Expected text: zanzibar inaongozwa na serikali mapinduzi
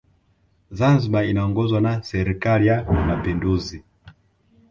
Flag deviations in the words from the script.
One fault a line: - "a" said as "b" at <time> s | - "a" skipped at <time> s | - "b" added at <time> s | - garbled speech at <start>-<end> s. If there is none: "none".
- "ya" added at 2.7 s